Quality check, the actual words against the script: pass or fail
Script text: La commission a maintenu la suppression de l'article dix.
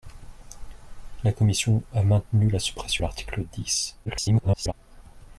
fail